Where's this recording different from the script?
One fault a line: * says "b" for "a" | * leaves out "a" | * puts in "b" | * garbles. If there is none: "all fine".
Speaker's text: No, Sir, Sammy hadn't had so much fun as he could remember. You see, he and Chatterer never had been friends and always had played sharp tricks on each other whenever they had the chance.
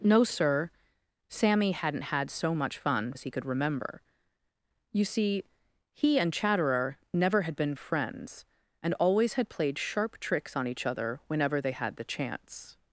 all fine